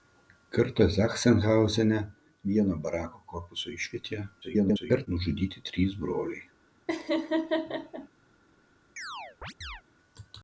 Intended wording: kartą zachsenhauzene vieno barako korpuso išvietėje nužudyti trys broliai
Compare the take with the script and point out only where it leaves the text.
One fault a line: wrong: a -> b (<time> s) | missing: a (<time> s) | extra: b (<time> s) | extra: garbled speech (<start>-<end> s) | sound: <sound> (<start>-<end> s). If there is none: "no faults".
extra: garbled speech (4.4-5.1 s)
sound: laugh (6.9-8.1 s)
sound: chirp (9.0-9.8 s)